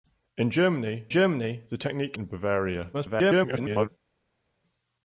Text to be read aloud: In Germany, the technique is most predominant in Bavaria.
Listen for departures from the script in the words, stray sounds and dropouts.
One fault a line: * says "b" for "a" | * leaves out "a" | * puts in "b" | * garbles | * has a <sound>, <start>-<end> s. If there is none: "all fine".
* puts in "Germany"
* leaves out "is most predominant"
* garbles